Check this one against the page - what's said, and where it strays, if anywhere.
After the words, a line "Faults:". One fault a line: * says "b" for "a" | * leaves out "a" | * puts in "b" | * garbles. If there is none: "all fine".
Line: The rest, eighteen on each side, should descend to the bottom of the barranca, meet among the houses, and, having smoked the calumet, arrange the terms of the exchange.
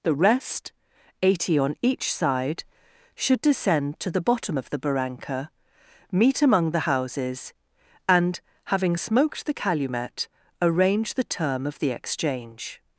The rest, eighty on each side, should descend to the bottom of the barranca, meet among the houses, and, having smoked the calumet, arrange the term of the exchange.
Faults:
* says "eighty" for "eighteen"
* says "term" for "terms"